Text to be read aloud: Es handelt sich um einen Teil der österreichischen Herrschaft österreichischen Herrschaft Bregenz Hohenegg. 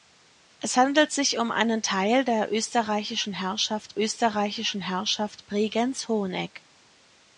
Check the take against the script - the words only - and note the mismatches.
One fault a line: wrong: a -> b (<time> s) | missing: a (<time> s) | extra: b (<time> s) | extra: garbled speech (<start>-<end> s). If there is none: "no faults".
no faults